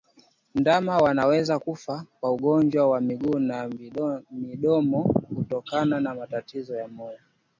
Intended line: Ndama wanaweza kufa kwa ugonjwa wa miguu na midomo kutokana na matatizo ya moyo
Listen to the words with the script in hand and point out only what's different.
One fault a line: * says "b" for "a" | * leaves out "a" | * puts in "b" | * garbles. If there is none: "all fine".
all fine